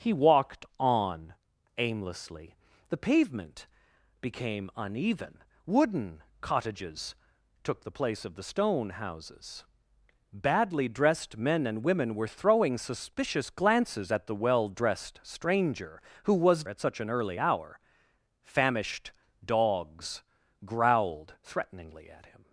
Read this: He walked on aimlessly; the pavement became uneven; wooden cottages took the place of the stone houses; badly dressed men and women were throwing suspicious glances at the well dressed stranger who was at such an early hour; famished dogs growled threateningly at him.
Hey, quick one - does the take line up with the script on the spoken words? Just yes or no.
yes